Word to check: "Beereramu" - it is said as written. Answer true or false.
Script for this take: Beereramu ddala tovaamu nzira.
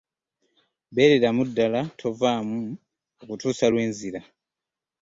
true